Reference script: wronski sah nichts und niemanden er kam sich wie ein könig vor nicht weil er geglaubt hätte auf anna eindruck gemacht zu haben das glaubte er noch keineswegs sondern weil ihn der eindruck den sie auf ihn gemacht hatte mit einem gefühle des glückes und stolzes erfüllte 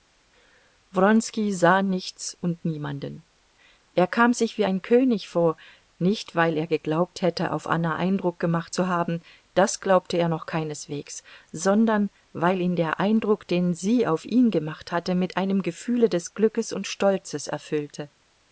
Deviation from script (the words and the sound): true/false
false